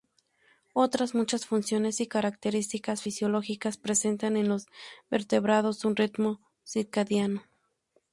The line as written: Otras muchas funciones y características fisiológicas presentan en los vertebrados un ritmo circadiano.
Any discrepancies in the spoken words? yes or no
no